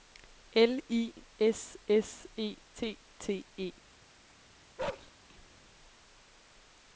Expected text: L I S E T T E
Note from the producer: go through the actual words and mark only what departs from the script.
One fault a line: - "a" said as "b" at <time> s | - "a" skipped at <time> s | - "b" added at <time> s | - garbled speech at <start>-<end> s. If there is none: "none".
- "S" added at 1.9 s